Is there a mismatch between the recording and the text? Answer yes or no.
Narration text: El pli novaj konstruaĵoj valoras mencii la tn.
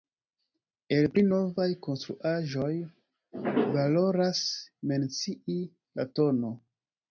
no